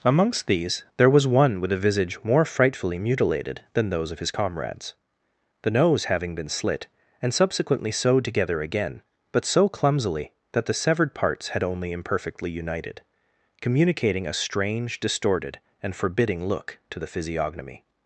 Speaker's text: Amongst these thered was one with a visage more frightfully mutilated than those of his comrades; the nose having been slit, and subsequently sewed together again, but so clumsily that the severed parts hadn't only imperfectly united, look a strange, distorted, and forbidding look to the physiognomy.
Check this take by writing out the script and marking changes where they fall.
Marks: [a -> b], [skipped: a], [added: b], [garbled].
Amongst these [thered -> there] was one with a visage more frightfully mutilated than those of his comrades; the nose having been slit, and subsequently sewed together again, but so clumsily that the severed parts [hadn't -> had] only imperfectly united, [look -> communicating] a strange, distorted, and forbidding look to the physiognomy.